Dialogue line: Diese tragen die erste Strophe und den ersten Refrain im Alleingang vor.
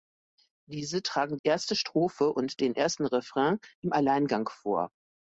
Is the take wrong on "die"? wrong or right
wrong